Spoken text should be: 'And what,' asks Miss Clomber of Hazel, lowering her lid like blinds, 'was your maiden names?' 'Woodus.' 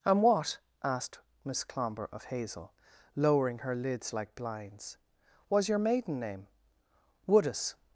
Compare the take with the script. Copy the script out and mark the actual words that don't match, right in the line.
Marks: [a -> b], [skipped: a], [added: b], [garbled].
'And what,' [asks -> asked] Miss Clomber of Hazel, lowering her [lid -> lids] like blinds, 'was your maiden [names?' -> name] 'Woodus.'